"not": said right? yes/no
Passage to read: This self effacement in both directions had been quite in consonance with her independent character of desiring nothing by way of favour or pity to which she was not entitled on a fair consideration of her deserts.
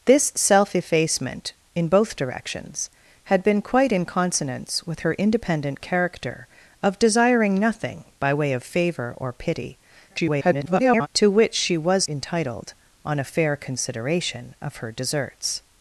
no